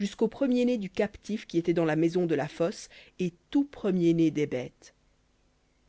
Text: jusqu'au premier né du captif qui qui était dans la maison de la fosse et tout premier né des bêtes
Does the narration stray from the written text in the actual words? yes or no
yes